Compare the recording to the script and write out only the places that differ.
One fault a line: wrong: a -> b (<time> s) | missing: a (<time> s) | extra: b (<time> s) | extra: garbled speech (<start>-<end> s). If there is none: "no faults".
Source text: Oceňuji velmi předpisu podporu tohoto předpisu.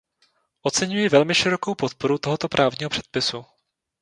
wrong: předpisu -> širokou (1.3 s)
extra: právního (2.5 s)